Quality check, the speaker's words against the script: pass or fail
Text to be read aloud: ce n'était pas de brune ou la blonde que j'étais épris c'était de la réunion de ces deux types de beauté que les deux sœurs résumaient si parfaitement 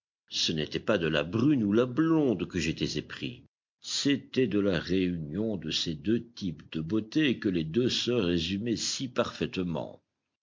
fail